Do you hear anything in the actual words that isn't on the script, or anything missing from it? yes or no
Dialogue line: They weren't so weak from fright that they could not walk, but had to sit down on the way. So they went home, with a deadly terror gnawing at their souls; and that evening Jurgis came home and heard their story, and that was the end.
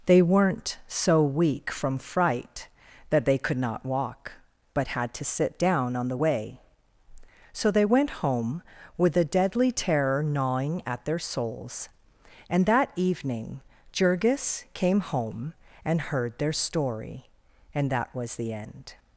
no